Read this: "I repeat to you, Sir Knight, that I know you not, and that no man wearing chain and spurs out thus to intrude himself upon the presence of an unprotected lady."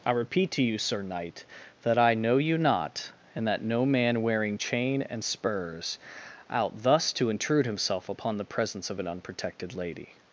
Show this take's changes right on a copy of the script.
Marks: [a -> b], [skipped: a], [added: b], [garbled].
"I repeat to you, Sir Knight, that I know you not, and that no man wearing chain and spurs out thus to intrude himself upon the presence of an unprotected lady."